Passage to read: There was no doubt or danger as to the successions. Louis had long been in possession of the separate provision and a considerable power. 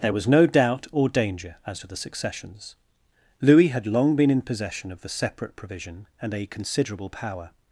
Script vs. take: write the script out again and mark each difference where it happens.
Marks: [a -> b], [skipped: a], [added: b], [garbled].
There was no doubt or danger as to the successions. Louis had long been in possession of the separate provision and a considerable power.